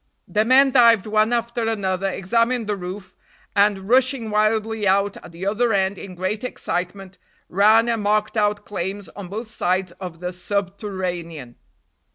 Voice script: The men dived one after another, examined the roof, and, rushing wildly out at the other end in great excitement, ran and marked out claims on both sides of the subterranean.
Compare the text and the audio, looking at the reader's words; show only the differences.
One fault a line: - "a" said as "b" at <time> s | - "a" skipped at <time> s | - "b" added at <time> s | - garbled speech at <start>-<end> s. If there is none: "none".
none